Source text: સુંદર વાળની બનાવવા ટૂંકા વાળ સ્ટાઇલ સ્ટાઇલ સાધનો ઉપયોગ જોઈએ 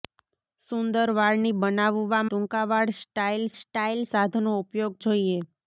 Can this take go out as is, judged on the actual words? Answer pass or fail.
pass